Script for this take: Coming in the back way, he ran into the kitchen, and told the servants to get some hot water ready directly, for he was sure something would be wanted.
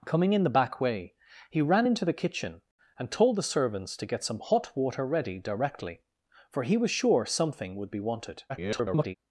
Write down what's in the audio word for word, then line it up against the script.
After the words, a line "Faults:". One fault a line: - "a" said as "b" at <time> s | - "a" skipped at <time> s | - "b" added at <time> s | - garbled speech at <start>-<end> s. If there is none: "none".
Coming in the back way, he ran into the kitchen, and told the servants to get some hot water ready directly, for he was sure something would be wanted. [garbled]
Faults:
- garbled speech at 8.5-9.2 s